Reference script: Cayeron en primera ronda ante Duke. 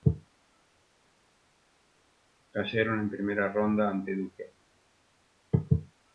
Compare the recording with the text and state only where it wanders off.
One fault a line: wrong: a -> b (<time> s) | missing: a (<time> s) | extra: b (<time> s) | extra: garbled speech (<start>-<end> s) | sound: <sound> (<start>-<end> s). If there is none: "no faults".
no faults